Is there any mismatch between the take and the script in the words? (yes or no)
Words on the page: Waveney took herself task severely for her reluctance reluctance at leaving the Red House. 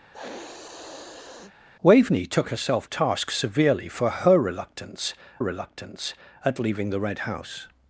no